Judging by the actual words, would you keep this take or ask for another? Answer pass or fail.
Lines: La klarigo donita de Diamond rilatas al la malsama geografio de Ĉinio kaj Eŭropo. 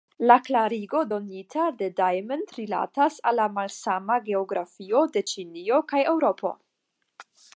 pass